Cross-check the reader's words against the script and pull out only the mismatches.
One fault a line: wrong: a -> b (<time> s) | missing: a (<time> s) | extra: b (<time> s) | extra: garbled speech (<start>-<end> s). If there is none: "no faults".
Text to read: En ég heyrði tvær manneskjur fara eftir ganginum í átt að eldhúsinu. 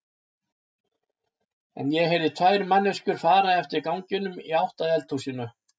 no faults